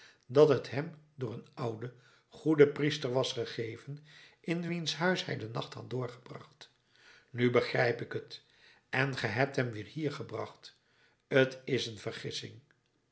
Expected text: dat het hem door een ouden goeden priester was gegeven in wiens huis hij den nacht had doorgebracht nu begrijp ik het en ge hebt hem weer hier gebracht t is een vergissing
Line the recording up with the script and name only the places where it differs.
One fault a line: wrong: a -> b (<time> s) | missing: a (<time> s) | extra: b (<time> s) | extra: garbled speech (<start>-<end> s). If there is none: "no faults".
no faults